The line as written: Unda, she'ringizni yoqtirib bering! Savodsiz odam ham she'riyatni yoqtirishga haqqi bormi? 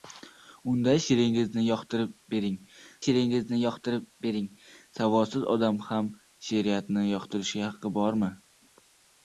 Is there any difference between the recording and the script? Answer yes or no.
yes